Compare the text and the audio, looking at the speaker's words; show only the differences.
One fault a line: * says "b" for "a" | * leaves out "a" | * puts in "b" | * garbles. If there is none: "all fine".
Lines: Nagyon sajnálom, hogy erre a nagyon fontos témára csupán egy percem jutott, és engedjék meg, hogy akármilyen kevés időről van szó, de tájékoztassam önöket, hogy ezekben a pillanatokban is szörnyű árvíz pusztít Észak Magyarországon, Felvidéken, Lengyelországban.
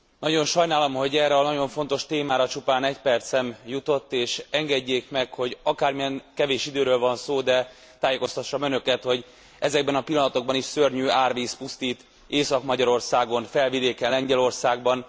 all fine